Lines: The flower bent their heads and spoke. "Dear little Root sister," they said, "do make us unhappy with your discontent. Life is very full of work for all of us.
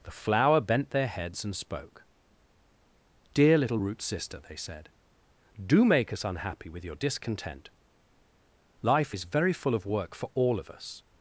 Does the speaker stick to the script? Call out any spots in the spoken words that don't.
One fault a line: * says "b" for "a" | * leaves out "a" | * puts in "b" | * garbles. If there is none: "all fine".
all fine